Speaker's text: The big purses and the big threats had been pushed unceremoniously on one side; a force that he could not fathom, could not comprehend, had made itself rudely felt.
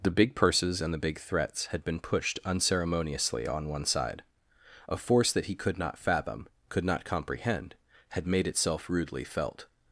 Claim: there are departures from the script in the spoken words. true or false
false